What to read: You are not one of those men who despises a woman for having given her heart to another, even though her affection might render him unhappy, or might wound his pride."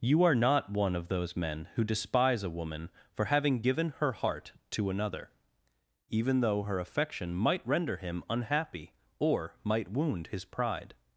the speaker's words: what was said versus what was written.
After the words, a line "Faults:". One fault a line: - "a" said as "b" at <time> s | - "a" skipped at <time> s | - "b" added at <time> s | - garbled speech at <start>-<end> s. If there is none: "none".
You are not one of those men who despise a woman for having given her heart to another, even though her affection might render him unhappy, or might wound his pride."
Faults:
- "despises" said as "despise" at 1.8 s